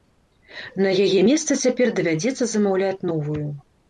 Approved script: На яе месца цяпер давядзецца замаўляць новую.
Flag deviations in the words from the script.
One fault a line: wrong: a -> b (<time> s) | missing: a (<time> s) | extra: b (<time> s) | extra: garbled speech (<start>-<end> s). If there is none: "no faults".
no faults